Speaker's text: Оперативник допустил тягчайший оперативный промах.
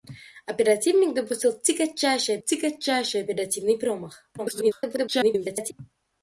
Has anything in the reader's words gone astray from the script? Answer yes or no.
yes